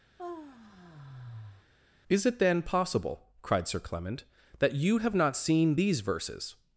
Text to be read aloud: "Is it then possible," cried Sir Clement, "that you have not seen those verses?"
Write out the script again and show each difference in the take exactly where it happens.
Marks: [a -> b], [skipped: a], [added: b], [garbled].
"Is it then possible," cried Sir Clement, "that you have not seen [those -> these] verses?"